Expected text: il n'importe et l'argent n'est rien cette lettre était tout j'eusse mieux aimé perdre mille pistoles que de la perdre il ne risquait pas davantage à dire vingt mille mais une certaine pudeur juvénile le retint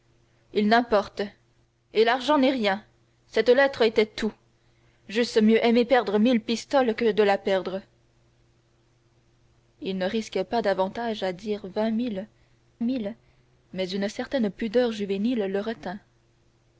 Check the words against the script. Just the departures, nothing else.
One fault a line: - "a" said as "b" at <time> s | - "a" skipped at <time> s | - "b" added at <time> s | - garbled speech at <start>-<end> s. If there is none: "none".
- "mille" added at 12.8 s